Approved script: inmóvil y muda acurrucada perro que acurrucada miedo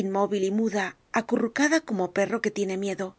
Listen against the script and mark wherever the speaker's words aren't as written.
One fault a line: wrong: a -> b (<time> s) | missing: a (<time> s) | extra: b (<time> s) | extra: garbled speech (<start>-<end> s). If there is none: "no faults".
extra: como (1.8 s)
wrong: acurrucada -> tiene (2.5 s)